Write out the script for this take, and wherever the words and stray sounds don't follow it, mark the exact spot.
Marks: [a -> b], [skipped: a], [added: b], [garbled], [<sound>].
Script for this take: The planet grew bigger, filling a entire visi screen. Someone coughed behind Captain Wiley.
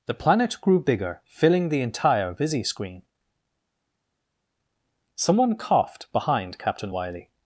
The planet grew bigger, filling [a -> the] entire visi screen. Someone coughed behind Captain Wiley.